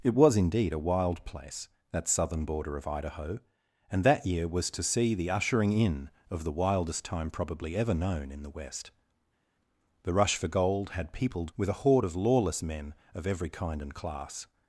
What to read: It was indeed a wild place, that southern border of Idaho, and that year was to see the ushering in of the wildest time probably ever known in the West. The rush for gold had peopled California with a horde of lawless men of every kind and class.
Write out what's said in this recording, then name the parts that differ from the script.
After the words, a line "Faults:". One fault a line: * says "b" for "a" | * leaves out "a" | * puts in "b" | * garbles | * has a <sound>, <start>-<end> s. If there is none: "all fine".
It was indeed a wild place, that southern border of Idaho, and that year was to see the ushering in of the wildest time probably ever known in the West. The rush for gold had peopled With a horde of lawless men of every kind and class.
Faults:
* leaves out "California"